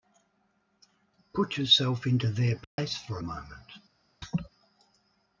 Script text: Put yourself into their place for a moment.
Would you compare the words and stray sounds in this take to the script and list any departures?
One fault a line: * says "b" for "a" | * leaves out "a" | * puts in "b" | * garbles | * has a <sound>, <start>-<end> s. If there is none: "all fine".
* has a dropout, 2.6-2.8 s
* has a laugh, 4.2-4.5 s